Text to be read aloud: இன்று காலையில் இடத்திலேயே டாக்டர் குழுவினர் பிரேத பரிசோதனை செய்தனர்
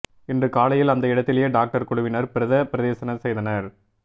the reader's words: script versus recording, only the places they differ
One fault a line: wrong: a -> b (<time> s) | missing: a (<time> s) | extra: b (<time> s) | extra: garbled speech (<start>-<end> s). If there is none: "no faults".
extra: அந்த (0.9 s)